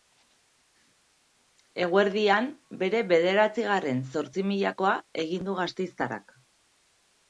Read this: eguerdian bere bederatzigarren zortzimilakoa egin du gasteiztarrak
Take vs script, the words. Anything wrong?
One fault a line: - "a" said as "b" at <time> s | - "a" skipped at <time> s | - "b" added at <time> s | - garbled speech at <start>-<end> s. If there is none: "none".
none